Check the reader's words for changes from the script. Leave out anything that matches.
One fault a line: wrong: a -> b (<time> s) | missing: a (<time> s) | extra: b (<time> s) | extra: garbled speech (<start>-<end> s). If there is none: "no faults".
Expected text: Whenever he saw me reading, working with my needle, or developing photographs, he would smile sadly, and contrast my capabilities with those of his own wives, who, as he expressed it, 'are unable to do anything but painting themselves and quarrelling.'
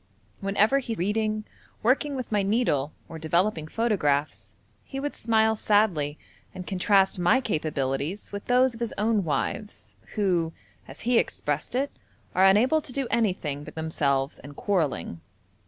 missing: saw me (0.9 s)
missing: painting (13.8 s)